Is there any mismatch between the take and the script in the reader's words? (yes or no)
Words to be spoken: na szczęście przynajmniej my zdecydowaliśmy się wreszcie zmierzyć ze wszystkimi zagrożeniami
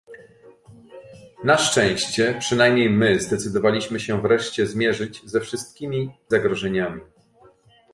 no